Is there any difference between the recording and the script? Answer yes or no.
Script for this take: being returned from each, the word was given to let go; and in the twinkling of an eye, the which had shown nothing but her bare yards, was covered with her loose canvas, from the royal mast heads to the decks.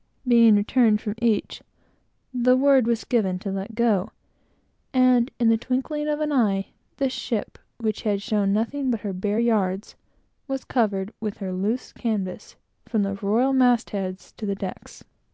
yes